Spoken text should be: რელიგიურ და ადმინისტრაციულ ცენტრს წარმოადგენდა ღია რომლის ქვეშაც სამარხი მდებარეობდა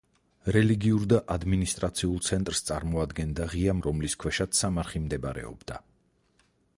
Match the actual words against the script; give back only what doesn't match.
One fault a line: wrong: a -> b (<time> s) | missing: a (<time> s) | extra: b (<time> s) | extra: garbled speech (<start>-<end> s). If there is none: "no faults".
no faults